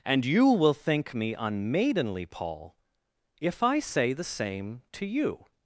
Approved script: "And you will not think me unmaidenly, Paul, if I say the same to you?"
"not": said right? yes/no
no